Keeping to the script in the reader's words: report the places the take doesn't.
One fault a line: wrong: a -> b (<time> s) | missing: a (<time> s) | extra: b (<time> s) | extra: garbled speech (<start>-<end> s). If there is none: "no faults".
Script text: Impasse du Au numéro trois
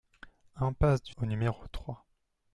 no faults